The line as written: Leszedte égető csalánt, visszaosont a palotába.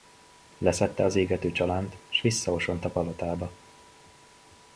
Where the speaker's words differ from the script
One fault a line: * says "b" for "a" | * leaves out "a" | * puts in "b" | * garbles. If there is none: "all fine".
* puts in "az"
* puts in "s"